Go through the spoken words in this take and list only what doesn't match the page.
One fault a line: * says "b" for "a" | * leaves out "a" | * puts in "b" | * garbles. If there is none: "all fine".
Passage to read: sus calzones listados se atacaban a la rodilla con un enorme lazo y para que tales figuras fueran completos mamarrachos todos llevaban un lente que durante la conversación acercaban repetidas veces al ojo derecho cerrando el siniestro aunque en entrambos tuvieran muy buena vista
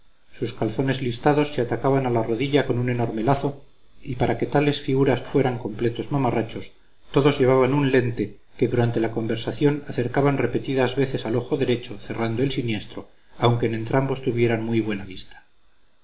all fine